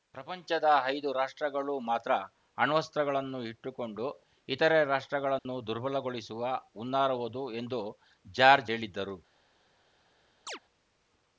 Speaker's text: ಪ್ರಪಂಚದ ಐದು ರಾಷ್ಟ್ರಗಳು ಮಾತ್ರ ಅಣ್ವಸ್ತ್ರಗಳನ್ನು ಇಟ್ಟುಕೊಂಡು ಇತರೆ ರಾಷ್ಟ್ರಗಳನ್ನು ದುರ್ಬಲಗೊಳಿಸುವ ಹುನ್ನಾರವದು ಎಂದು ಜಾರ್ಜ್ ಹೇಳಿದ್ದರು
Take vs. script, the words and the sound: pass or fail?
fail